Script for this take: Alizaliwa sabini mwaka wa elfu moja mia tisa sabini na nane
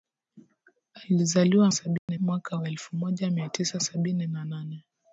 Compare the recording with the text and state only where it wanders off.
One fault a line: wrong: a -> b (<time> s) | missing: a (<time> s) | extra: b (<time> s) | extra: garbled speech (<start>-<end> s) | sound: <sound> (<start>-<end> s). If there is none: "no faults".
sound: dropout (2.0-2.1 s)